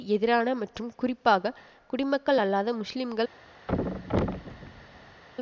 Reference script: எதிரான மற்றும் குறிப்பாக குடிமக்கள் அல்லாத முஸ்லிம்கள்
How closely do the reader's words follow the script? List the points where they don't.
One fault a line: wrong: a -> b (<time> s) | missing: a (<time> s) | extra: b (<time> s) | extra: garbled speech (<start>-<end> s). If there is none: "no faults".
no faults